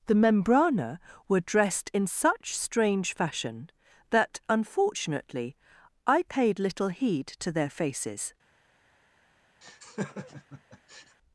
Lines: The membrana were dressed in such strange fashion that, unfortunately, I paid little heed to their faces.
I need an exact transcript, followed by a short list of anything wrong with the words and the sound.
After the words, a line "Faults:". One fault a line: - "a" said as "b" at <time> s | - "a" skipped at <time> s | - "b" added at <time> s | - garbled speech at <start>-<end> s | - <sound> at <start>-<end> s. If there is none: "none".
The membrana were dressed in such strange fashion that, unfortunately, I paid little heed to their faces.
Faults:
- laugh at 9.6-11.2 s